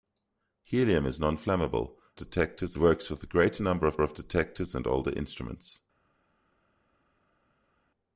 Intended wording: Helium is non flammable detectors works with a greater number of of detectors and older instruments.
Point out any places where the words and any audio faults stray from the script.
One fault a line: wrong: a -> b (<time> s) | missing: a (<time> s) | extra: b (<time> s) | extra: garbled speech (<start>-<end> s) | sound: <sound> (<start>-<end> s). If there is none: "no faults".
no faults